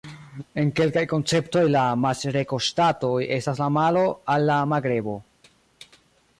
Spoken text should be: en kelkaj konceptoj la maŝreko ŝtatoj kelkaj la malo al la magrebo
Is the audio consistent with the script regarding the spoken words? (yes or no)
no